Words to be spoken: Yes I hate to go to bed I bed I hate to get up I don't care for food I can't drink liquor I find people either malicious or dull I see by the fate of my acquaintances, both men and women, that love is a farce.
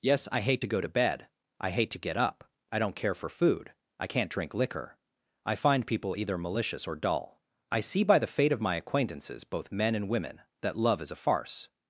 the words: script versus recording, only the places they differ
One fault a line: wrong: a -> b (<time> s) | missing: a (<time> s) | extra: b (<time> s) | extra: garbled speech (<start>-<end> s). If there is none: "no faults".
missing: bed I (1.7 s)